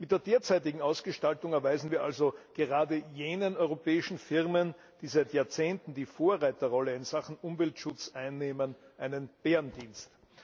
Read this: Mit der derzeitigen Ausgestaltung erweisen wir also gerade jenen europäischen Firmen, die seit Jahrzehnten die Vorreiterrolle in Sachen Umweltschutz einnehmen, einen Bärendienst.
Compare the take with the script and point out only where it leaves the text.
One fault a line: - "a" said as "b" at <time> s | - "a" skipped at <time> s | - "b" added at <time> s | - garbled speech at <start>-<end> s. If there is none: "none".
none